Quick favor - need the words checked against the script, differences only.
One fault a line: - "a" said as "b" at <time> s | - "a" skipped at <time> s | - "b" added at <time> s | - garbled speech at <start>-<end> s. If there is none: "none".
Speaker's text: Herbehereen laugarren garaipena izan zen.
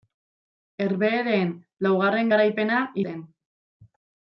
- "izan" skipped at 2.8 s